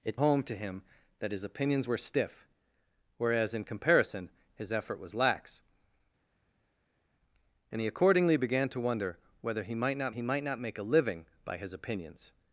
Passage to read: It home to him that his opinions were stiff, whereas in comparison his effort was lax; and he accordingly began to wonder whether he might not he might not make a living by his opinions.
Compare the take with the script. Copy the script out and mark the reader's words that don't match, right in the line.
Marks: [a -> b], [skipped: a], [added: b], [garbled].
It home to him that his opinions were stiff, whereas in comparison his effort was lax; and he accordingly began to wonder whether he might not he might not make a living by his opinions.